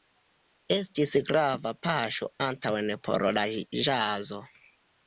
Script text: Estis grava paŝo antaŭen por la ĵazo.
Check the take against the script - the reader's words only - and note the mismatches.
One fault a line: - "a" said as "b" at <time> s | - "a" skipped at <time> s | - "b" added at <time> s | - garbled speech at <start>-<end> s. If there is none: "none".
none